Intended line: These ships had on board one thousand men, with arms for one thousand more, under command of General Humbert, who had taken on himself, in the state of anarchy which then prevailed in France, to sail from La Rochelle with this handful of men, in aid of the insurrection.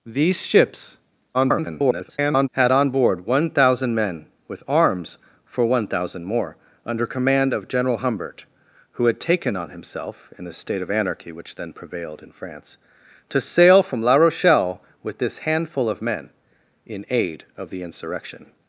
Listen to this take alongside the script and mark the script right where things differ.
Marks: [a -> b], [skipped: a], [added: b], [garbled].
These ships [garbled] had on board one thousand men, with arms for one thousand more, under command of General Humbert, who had taken on himself, in the state of anarchy which then prevailed in France, to sail from La Rochelle with this handful of men, in aid of the insurrection.